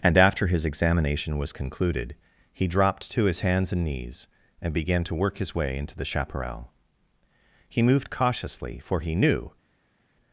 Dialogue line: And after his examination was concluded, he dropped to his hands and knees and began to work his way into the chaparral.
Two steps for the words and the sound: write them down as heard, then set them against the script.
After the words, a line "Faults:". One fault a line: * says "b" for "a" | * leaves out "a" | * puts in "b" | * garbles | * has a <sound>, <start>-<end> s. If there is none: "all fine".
And after his examination was concluded, he dropped to his hands and knees and began to work his way into the chaparral. He moved cautiously, for he knew
Faults:
* puts in "He moved cautiously for he knew"